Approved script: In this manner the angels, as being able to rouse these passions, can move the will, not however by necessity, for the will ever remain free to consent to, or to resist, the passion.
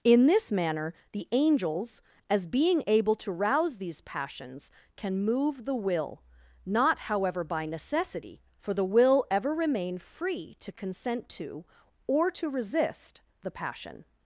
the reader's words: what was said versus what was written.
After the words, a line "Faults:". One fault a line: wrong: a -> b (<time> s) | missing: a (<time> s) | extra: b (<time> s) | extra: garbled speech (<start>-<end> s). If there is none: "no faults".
In this manner the angels, as being able to rouse these passions, can move the will, not however by necessity, for the will ever remain free to consent to, or to resist, the passion.
Faults:
no faults